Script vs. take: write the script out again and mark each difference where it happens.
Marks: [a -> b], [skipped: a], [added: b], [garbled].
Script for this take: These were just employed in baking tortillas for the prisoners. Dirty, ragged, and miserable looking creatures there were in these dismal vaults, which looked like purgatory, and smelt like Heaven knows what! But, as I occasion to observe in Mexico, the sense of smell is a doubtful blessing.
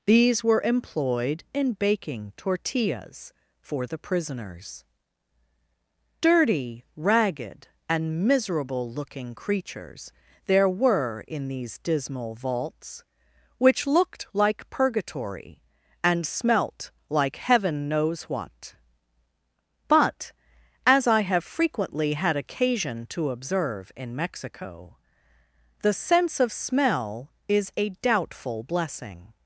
These were [skipped: just] employed in baking tortillas for the prisoners. Dirty, ragged, and miserable looking creatures there were in these dismal vaults, which looked like purgatory, and smelt like Heaven knows what! But, as I [added: have frequently had] occasion to observe in Mexico, the sense of smell is a doubtful blessing.